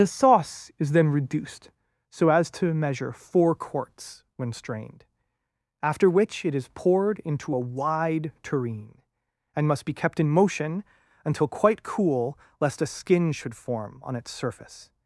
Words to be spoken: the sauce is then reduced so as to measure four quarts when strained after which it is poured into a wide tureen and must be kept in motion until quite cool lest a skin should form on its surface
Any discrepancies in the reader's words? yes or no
no